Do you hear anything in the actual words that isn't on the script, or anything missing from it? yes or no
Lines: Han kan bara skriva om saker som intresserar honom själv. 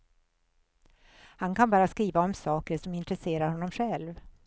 no